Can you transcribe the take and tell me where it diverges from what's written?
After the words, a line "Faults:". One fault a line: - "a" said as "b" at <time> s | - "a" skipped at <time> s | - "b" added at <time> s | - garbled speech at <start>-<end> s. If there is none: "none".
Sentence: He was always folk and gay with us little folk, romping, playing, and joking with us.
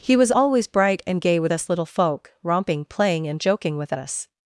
He was always bright and gay with us little folk, romping, playing, and joking with us.
Faults:
- "folk" said as "bright" at 0.7 s